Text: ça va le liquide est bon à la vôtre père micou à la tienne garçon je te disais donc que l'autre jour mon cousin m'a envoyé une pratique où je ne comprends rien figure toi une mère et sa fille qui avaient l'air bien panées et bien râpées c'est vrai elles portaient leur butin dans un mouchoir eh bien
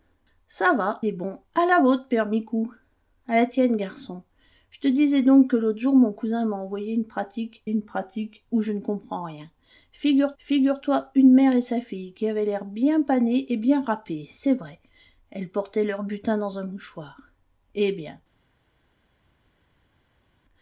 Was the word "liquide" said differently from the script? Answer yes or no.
yes